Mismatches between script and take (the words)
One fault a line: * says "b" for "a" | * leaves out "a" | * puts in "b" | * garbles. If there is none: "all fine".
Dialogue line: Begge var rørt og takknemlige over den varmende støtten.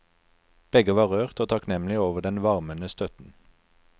all fine